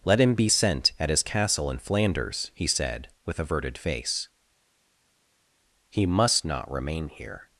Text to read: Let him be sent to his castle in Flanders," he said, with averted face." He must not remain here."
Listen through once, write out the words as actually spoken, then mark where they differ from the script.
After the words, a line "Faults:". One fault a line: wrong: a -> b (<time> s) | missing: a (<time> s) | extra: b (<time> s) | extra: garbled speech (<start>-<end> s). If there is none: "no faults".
Let him be sent at his castle in Flanders," he said, with averted face." He must not remain here."
Faults:
wrong: to -> at (1.0 s)